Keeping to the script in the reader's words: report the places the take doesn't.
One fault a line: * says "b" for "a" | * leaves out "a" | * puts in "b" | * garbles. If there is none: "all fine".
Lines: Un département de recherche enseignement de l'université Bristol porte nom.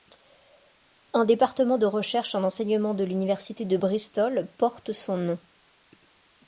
* puts in "en"
* puts in "de"
* puts in "son"